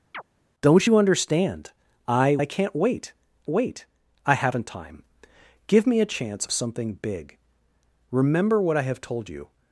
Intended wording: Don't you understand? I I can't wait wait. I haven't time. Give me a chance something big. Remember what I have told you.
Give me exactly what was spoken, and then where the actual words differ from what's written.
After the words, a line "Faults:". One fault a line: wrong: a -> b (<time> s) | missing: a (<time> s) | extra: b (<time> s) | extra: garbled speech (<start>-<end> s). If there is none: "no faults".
Don't you understand? I I can't wait wait. I haven't time. Give me a chance something big. Remember what I have told you.
Faults:
no faults